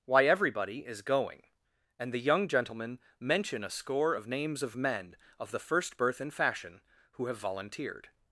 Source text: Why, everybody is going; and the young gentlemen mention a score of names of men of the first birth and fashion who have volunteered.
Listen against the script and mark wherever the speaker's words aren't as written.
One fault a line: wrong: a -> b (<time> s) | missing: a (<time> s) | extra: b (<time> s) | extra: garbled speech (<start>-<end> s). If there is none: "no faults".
no faults